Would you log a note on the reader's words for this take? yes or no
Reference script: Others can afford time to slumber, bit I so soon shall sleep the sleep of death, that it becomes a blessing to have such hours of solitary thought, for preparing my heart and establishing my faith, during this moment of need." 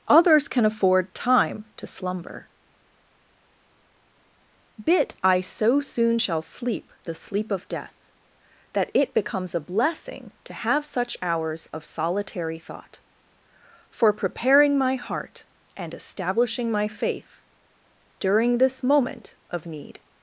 no